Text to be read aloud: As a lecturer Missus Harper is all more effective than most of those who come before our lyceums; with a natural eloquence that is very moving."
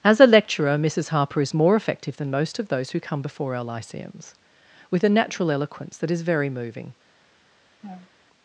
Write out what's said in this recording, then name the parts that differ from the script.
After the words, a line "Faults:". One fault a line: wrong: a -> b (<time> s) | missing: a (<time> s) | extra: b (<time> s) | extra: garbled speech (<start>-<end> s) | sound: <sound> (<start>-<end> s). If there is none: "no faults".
As a lecturer Missus Harper is more effective than most of those who come before our lyceums; with a natural eloquence that is very moving."
Faults:
missing: all (1.5 s)
sound: laugh (7.8-8.1 s)